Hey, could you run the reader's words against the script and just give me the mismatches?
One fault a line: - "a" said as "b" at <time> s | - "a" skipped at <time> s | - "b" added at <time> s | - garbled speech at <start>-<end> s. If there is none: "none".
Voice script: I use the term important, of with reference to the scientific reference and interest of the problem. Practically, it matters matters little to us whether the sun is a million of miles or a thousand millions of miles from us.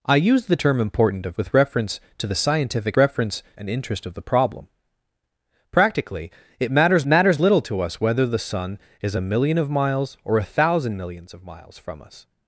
none